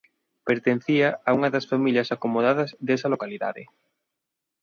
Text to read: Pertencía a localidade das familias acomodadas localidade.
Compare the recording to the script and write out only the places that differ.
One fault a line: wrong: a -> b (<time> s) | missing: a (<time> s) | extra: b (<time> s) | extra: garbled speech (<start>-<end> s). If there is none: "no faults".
wrong: localidade -> unha (1.4 s)
extra: desa (2.9 s)